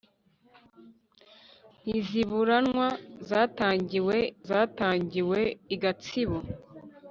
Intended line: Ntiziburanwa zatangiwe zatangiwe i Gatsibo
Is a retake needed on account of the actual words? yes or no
no